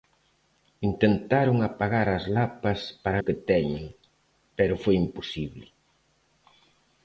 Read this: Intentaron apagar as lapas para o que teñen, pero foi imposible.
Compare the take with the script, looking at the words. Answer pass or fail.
pass